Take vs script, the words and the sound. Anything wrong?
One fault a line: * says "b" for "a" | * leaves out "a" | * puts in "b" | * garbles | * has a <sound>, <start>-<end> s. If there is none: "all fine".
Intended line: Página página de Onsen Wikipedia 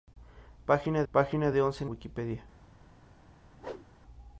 * has a whoosh, 3.6-3.9 s